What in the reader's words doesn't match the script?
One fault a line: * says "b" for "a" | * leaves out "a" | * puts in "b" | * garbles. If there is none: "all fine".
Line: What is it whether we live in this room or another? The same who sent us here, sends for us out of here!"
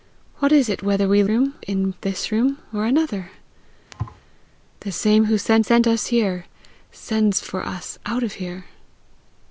* says "room" for "live"
* puts in "sent"